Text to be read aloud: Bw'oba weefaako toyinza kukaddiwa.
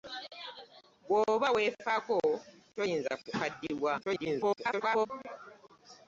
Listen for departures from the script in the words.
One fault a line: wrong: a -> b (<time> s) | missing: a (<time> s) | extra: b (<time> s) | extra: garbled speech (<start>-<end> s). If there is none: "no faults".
extra: garbled speech (4.0-5.1 s)